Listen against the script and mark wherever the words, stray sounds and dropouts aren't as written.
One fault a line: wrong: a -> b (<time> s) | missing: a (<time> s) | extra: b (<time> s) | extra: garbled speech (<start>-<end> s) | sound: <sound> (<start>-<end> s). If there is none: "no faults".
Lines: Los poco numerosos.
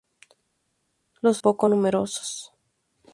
no faults